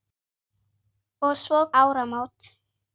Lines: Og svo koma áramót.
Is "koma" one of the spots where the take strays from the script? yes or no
yes